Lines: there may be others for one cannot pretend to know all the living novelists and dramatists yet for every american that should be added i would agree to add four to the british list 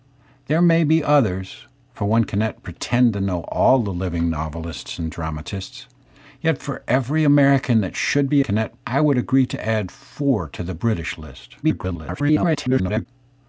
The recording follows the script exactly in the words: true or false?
false